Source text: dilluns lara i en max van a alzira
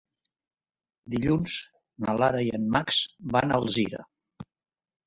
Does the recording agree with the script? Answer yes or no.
no